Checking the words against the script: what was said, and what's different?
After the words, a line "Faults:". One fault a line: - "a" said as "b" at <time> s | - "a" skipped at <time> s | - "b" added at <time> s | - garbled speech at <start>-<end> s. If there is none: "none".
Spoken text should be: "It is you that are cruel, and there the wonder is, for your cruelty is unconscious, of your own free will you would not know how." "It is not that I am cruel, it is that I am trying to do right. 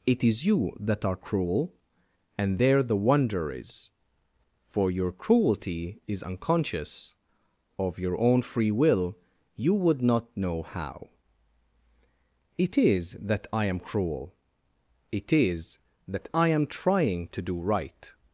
"It is you that are cruel, and there the wonder is, for your cruelty is unconscious, of your own free will you would not know how." "It is that I am cruel, it is that I am trying to do right.
Faults:
- "not" skipped at 13.2 s